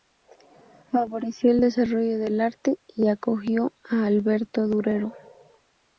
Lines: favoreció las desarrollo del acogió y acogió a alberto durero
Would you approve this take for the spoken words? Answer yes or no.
no